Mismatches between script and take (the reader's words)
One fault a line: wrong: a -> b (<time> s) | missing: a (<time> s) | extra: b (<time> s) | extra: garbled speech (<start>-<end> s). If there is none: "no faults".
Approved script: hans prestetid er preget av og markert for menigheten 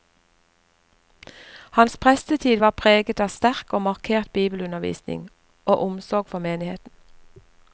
wrong: er -> var (2.6 s)
extra: sterk (3.3 s)
extra: bibelundervisning og omsorg (4.3 s)